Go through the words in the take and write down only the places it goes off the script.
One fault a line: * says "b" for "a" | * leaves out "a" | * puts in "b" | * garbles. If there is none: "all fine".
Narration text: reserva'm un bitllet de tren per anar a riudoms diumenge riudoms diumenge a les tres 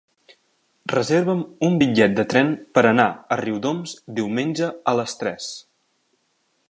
* leaves out "riudoms diumenge"